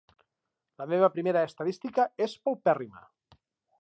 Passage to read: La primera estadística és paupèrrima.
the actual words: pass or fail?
fail